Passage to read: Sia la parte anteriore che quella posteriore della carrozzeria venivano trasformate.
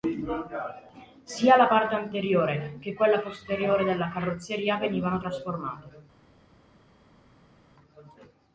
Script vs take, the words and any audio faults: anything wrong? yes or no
no